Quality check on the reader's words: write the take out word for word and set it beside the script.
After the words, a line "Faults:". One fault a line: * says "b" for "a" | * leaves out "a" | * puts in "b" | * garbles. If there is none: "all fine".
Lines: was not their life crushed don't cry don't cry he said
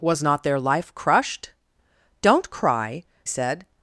was not their life crushed don't cry said
Faults:
* leaves out "don't cry he"